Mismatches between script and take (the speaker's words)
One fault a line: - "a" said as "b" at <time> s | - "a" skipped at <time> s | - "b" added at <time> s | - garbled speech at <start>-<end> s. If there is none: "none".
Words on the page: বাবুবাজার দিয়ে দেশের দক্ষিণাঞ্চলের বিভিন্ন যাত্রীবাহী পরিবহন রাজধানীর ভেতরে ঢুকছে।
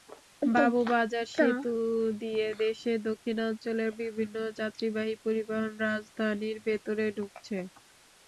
- "সেতু" added at 1.3 s